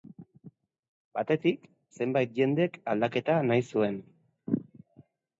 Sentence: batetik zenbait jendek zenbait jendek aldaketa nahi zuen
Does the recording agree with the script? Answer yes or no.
no